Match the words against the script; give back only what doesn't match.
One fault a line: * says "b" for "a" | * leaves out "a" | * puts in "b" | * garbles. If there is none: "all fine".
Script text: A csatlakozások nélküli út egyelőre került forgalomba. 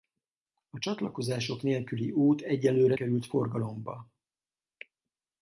all fine